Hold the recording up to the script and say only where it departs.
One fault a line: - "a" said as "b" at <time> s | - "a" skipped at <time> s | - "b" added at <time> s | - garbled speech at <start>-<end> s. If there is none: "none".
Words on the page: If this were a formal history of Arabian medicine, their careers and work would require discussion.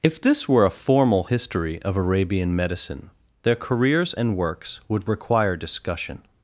- "work" said as "works" at 4.4 s